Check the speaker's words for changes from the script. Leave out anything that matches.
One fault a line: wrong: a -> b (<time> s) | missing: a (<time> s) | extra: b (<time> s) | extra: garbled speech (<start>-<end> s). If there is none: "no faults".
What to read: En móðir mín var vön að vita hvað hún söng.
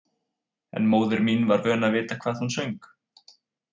no faults